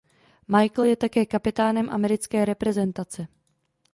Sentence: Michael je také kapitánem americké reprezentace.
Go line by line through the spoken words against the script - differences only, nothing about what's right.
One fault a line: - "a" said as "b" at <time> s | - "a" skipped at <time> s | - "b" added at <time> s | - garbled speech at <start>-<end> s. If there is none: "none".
none